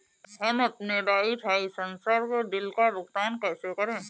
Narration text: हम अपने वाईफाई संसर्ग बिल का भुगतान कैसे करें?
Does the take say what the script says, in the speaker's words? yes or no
yes